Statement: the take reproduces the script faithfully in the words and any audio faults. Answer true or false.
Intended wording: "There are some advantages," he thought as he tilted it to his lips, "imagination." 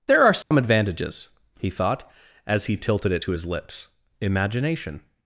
false